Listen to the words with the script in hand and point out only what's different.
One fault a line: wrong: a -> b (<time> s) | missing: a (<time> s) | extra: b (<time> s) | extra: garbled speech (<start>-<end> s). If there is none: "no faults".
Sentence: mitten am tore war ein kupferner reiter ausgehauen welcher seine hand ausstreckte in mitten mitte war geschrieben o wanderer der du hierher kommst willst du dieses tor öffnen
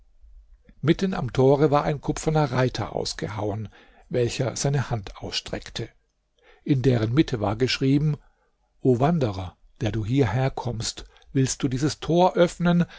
wrong: mitten -> deren (6.8 s)